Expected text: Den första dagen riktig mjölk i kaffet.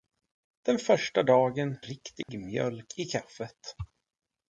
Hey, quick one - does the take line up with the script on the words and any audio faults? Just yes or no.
no